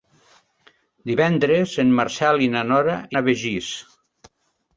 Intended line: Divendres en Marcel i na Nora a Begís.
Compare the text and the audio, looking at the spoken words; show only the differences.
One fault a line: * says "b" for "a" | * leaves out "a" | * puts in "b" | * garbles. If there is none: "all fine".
all fine